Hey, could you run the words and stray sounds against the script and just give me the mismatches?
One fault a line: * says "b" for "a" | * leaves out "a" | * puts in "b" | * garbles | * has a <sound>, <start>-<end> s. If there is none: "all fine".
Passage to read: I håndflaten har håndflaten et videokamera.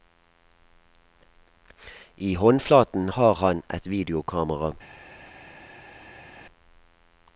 * says "han" for "håndflaten"